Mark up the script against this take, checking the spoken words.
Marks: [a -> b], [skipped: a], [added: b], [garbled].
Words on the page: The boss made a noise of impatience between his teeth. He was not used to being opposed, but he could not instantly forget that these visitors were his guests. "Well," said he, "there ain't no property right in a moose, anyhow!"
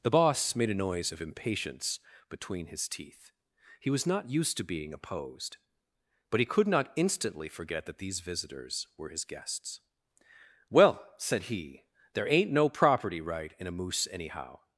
The boss made a noise of impatience between his teeth. He was not used to being opposed, but he could not instantly forget that these visitors were his guests. "Well," said he, "there ain't no property right in a moose, anyhow!"